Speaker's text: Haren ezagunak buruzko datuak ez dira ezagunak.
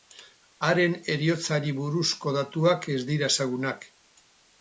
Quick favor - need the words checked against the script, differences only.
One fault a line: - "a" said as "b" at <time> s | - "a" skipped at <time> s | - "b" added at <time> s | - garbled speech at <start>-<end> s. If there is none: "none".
- "ezagunak" said as "heriotzari" at 1.1 s